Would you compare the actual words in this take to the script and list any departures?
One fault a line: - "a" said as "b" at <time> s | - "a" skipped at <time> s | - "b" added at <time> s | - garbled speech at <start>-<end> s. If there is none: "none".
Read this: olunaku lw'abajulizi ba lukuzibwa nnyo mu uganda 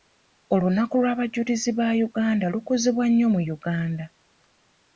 - "uganda" added at 2.1 s